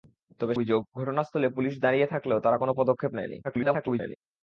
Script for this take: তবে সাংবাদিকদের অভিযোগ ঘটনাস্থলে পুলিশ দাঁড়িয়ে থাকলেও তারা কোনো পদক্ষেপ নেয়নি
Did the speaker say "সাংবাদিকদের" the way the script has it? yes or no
no